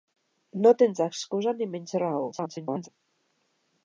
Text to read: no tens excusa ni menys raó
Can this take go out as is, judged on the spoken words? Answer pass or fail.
fail